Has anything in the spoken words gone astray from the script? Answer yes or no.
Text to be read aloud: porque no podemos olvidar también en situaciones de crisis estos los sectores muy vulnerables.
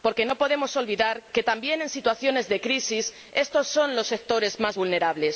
yes